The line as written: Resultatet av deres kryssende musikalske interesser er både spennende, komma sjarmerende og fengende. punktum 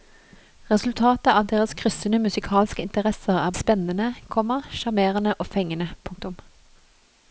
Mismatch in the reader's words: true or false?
true